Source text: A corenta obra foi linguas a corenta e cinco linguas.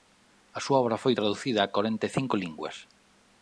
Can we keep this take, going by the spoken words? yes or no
no